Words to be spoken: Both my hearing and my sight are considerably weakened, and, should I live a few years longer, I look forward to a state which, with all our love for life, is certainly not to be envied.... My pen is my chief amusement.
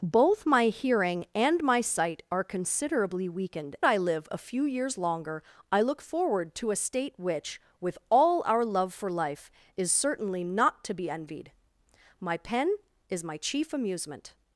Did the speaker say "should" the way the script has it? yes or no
no